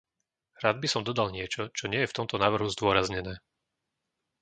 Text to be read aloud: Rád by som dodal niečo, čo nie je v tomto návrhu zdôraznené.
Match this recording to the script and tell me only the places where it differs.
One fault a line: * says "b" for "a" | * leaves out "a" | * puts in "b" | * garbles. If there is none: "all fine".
all fine